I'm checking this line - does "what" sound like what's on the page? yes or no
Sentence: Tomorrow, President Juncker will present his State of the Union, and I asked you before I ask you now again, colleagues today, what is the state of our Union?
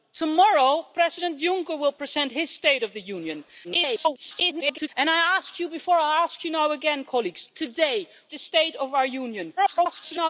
no